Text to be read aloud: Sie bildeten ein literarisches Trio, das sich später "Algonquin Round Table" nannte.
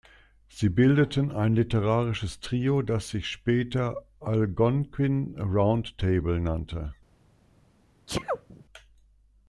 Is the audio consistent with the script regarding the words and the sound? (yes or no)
no